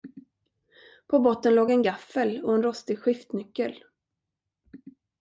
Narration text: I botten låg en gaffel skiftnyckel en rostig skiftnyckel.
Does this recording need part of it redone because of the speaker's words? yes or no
yes